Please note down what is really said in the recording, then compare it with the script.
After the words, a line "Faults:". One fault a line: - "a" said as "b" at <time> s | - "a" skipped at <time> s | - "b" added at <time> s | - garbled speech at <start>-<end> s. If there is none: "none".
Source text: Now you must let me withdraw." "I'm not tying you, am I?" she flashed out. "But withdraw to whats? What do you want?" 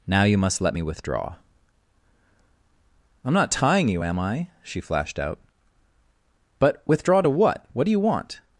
Now you must let me withdraw." "I'm not tying you, am I?" she flashed out. "But withdraw to what? What do you want?"
Faults:
- "whats" said as "what" at 7.3 s